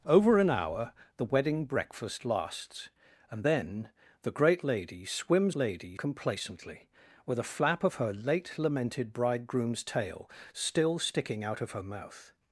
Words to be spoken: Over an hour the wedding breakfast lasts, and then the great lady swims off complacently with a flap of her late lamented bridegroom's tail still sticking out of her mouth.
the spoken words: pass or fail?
fail